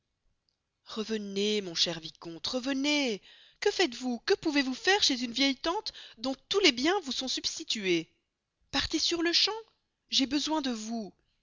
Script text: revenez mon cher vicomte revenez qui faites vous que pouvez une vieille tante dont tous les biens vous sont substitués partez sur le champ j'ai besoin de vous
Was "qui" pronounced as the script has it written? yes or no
no